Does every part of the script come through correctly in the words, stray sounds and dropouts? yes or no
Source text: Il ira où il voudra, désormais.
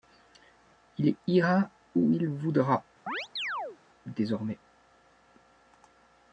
no